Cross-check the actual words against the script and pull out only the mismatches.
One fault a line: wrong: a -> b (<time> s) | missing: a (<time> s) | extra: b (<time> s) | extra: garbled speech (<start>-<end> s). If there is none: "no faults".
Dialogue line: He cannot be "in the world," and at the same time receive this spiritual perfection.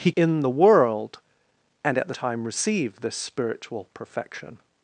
missing: cannot be (0.1 s)
missing: same (2.1 s)